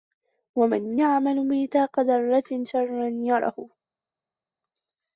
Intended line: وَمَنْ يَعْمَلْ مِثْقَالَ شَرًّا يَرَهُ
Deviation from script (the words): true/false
true